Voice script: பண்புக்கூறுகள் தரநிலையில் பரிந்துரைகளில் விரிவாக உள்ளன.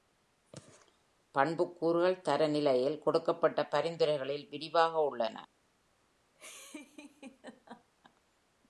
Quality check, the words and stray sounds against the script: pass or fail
fail